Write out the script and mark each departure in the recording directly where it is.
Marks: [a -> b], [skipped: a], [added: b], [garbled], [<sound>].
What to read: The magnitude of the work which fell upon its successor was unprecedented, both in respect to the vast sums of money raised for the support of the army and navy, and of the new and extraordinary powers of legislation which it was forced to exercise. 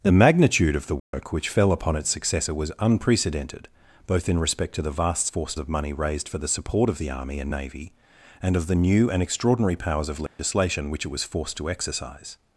The magnitude of the work [dropout] which fell upon its successor was unprecedented, both in respect to the vast [sums -> forced] of money raised for the support of the army and navy, and of the new and extraordinary powers of legislation [dropout] which it was forced to exercise.